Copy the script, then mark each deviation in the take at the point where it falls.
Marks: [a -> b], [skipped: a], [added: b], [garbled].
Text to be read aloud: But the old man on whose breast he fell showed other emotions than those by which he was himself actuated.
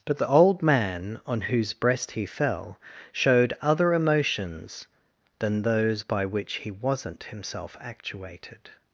But the old man on whose breast he fell showed other emotions than those by which he [was -> wasn't] himself actuated.